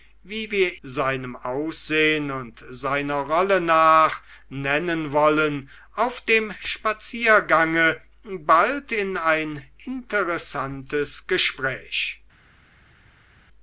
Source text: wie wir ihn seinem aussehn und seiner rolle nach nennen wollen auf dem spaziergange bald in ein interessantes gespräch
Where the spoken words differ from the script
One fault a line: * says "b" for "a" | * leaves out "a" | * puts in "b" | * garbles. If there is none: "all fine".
* leaves out "ihn"